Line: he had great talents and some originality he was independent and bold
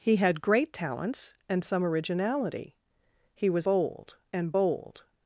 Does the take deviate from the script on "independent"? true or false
true